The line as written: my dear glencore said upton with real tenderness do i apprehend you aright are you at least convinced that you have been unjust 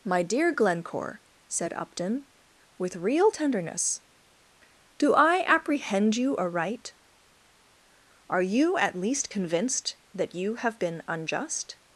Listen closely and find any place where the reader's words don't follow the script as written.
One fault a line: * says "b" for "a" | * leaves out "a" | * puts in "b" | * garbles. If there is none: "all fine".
all fine